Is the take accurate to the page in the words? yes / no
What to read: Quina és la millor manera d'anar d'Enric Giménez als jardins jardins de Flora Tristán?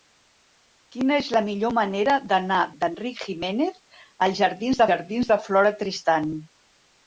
yes